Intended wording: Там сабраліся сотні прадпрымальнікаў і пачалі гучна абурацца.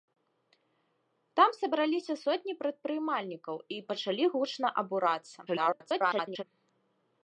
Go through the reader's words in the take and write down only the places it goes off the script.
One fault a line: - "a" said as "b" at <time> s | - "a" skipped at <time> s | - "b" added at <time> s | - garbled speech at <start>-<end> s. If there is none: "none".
- garbled speech at 5.5-6.4 s